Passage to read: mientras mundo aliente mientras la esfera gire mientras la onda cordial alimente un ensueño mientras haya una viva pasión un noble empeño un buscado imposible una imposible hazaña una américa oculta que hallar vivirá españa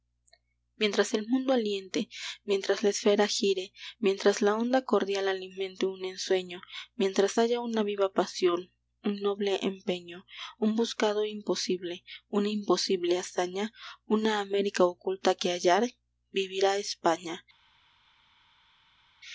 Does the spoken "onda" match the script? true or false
true